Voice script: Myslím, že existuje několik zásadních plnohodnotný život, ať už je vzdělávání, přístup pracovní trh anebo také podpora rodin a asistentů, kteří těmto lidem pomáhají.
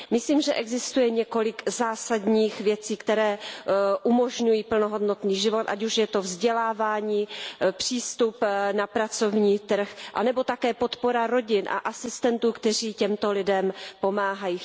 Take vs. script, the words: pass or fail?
fail